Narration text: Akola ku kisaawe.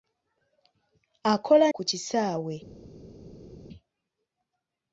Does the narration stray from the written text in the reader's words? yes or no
no